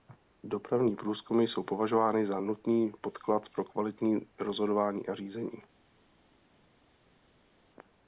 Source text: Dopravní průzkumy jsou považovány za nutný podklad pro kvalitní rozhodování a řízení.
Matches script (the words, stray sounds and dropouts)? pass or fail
pass